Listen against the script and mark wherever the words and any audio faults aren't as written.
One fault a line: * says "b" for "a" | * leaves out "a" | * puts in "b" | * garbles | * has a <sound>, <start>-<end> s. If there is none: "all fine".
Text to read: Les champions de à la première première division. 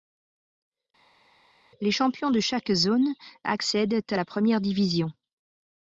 * puts in "chaque zone accèdent"
* leaves out "première"